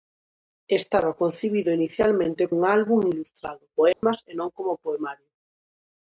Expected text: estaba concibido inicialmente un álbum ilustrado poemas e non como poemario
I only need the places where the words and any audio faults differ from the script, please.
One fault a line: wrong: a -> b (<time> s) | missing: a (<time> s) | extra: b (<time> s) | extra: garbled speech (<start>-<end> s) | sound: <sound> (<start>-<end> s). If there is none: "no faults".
sound: dropout (3.9-4.0 s)